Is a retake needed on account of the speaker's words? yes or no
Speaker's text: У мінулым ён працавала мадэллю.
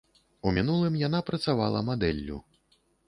yes